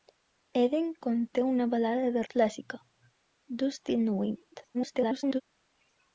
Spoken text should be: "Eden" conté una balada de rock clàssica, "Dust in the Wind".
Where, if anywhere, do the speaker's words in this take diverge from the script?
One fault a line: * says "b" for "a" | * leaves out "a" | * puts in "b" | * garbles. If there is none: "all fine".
* leaves out "rock"
* garbles